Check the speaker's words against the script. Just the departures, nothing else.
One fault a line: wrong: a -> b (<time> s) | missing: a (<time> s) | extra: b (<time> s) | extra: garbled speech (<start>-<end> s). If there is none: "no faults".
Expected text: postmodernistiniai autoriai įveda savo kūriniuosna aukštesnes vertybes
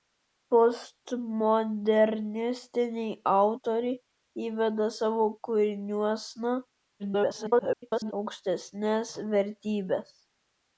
extra: garbled speech (7.0-8.1 s)